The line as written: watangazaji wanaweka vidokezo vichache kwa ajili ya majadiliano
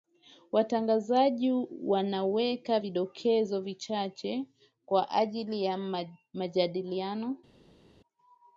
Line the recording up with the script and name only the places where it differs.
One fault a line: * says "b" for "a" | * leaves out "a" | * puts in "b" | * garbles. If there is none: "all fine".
all fine